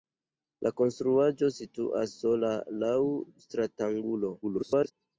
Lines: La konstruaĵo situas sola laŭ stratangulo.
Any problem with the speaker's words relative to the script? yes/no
yes